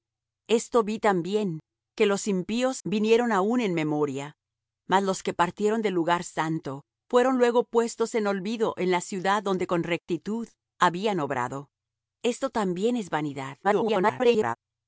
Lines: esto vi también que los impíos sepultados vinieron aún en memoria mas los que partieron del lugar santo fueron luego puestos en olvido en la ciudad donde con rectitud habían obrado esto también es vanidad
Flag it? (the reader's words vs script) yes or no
yes